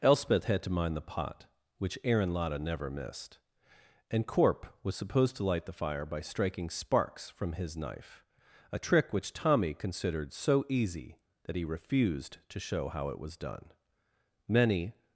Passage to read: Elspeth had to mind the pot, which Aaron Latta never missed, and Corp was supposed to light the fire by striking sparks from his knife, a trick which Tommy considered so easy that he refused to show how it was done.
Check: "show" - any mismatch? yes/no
no